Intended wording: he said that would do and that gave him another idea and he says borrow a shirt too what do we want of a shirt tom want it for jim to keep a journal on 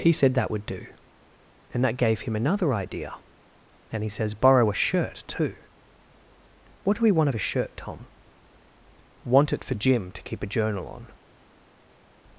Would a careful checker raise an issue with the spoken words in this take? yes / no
no